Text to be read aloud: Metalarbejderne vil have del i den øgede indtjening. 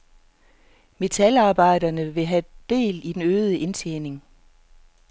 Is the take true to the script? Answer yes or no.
yes